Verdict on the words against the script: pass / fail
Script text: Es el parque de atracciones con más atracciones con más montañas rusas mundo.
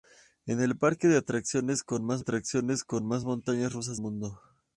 pass